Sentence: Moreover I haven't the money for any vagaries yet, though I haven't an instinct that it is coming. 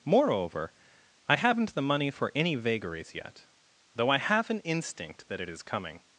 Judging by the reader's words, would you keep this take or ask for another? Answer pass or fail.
fail